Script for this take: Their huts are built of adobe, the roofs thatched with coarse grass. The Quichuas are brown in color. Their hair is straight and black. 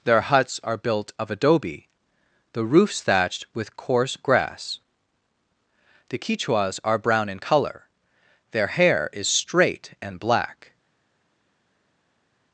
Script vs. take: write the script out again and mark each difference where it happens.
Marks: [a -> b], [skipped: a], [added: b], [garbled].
Their huts are built of adobe, the roofs thatched with coarse grass. The Quichuas are brown in color. Their hair is straight and black.